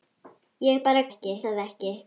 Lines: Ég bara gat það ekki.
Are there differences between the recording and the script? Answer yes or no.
yes